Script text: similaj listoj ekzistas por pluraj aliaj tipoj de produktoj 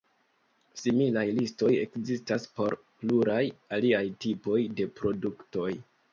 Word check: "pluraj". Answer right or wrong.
right